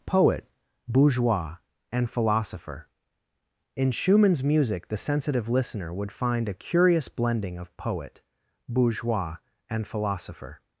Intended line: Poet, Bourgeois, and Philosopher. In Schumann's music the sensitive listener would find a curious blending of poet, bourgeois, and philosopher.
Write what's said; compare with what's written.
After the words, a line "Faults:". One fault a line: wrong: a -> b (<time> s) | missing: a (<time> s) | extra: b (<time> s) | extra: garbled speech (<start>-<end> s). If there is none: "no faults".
Poet, Bourgeois, and Philosopher. In Schumann's music the sensitive listener would find a curious blending of poet, bourgeois, and philosopher.
Faults:
no faults